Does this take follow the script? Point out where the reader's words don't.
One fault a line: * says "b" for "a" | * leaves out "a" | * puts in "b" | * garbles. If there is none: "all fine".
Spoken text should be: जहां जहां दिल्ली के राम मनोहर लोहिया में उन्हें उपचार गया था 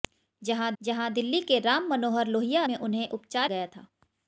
all fine